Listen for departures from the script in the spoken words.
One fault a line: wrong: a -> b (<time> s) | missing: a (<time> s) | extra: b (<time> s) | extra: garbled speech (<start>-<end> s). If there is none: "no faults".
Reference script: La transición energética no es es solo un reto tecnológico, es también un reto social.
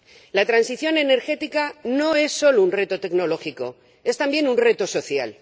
missing: es (2.3 s)